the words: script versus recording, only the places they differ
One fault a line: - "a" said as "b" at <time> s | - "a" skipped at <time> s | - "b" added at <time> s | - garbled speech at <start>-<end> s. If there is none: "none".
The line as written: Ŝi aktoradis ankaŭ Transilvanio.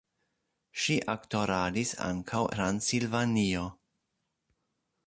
none